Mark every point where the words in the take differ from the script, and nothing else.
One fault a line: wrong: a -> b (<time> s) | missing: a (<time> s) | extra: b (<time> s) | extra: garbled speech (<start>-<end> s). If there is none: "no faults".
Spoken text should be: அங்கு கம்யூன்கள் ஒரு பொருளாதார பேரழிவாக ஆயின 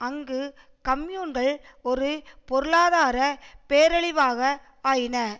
no faults